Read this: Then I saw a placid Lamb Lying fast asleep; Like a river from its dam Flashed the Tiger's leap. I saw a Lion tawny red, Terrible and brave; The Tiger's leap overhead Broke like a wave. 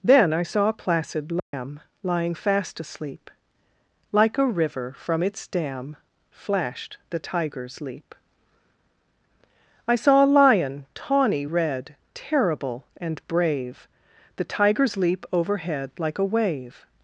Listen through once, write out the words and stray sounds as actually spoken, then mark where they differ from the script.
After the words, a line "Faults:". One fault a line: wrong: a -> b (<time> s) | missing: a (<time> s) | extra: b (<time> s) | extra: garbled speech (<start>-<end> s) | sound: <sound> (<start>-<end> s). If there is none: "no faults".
Then I saw a placid Lamb Lying fast asleep; Like a river from its dam Flashed the Tiger's leap. I saw a Lion tawny red, Terrible and brave; The Tiger's leap overhead like a wave.
Faults:
sound: dropout (1.4-1.5 s)
missing: Broke (15.9 s)